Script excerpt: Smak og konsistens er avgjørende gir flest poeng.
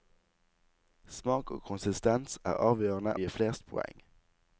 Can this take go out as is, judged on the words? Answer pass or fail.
pass